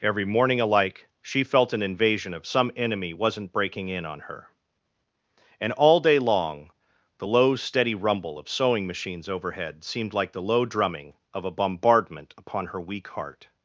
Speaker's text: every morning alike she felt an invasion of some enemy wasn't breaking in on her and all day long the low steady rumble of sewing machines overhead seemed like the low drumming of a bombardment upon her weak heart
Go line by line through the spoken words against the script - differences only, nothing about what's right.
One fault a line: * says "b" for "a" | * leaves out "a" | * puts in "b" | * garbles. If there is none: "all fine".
all fine